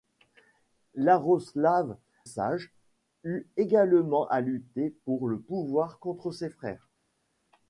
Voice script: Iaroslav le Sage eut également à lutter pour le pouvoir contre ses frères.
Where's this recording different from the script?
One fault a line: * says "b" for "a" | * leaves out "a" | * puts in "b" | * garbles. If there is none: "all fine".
* leaves out "le"